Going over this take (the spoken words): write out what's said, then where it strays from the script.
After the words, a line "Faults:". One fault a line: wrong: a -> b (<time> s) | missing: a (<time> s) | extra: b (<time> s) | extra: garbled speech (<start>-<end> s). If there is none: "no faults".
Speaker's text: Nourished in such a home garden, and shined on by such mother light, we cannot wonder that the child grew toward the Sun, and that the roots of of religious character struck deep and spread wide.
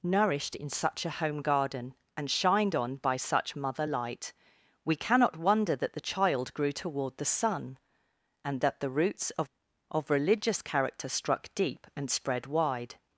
Nourished in such a home garden, and shined on by such mother light, we cannot wonder that the child grew toward the Sun, and that the roots of of religious character struck deep and spread wide.
Faults:
no faults